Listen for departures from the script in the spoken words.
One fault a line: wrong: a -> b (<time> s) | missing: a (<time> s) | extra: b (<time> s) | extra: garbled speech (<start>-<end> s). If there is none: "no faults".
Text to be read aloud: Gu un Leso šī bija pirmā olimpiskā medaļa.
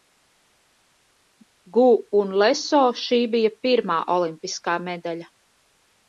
no faults